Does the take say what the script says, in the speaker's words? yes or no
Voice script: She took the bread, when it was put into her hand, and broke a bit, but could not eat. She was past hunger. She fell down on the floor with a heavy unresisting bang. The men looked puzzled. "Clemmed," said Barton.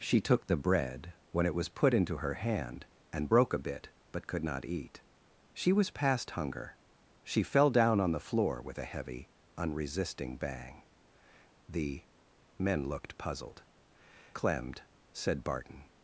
yes